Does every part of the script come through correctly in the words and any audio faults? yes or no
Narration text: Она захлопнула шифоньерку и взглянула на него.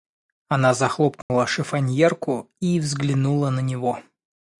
no